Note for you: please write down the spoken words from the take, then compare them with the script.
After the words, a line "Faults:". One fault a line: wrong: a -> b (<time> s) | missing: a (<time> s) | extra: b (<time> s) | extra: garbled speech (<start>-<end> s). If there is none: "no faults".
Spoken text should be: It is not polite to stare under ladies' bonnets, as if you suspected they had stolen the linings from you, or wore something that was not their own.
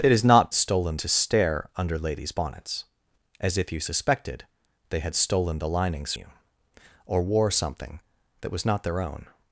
It is not stolen to stare under ladies' bonnets, as if you suspected they had stolen the linings you, or wore something that was not their own.
Faults:
wrong: polite -> stolen (0.5 s)
missing: from (6.1 s)